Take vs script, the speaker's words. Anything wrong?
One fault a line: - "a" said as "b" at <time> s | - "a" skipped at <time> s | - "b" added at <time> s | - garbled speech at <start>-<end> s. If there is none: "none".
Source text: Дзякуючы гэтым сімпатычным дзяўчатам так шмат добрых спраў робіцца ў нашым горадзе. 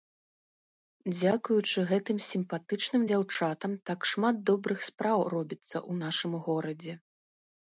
none